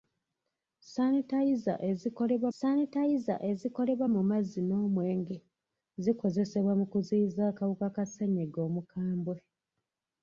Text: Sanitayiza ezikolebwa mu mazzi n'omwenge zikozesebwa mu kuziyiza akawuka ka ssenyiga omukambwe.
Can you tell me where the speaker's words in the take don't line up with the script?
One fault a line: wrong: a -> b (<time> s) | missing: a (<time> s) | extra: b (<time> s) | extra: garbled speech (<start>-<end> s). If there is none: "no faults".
extra: sanitayiza ezikolebwa (2.6 s)